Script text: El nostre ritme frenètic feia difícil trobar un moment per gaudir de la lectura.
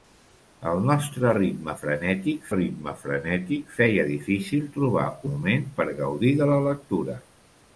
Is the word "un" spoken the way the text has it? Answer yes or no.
no